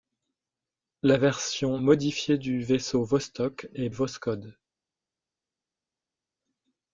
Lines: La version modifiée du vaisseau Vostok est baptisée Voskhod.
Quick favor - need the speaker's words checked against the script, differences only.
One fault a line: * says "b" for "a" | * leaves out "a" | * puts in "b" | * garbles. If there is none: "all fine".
* leaves out "baptisée"